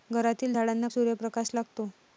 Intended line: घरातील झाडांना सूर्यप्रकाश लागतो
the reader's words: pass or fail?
pass